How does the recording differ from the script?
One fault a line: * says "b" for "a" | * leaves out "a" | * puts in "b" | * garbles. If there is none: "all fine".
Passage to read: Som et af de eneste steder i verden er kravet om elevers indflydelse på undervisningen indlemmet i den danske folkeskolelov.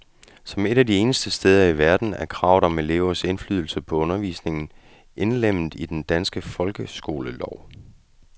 all fine